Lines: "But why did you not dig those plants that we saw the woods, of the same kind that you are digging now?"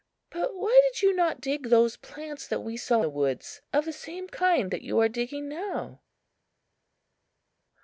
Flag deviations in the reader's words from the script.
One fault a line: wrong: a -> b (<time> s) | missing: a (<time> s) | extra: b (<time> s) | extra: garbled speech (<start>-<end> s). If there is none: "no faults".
no faults